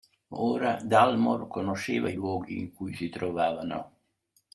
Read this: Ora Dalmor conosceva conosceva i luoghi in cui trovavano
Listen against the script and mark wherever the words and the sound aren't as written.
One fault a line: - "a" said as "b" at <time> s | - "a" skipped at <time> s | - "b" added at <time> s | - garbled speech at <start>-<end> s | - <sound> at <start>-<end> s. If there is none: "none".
- "conosceva" skipped at 2.1 s
- "si" added at 2.9 s